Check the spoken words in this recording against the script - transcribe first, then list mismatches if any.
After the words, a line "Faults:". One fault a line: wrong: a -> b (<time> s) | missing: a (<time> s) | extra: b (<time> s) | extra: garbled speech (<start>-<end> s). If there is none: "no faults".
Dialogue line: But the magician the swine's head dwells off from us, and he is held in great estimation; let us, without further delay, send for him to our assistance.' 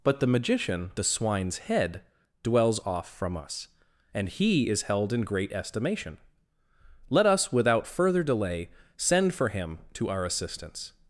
But the magician the swine's head dwells off from us, and he is held in great estimation; let us, without further delay, send for him to our assistance.'
Faults:
no faults